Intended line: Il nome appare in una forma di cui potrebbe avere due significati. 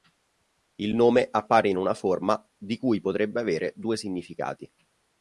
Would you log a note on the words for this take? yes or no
no